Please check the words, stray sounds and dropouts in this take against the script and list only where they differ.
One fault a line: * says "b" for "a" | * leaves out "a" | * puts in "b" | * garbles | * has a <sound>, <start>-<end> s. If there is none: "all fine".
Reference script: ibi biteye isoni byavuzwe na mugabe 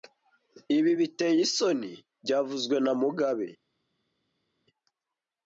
all fine